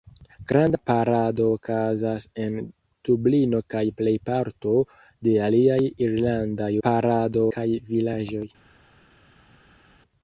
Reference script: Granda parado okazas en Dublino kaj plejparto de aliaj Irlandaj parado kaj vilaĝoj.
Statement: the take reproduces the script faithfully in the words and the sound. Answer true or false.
true